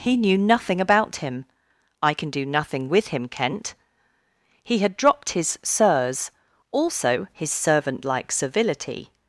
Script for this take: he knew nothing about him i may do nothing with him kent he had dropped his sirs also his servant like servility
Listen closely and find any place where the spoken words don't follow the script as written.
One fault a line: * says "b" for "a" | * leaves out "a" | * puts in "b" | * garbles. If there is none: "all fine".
* says "can" for "may"